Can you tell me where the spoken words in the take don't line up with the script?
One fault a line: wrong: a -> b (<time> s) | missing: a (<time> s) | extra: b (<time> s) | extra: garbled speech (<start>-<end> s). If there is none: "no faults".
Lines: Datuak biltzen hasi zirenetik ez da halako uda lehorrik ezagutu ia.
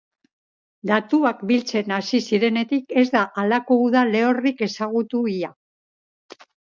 no faults